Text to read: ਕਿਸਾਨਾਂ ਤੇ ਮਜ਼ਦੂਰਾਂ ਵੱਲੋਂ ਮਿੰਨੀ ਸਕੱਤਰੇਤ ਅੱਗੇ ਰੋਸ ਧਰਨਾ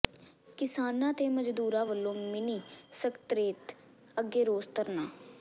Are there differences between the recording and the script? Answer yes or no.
no